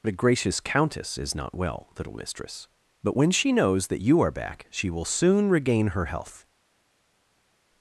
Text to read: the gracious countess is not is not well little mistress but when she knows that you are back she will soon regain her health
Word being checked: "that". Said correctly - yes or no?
yes